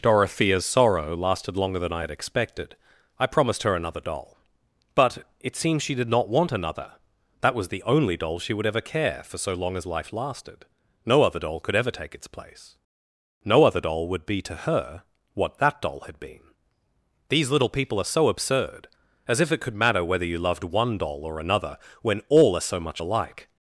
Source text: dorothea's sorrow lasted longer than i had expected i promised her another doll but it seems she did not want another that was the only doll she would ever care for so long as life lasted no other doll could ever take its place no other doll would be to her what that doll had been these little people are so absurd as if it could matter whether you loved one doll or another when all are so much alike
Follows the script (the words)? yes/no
yes